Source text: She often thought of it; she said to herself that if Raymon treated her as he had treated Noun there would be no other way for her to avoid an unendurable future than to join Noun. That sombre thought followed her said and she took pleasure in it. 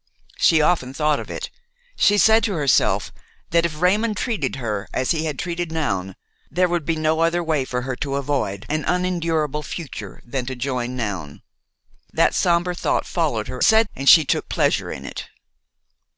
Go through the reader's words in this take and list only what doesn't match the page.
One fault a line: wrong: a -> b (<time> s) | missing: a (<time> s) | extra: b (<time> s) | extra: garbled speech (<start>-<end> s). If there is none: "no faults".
no faults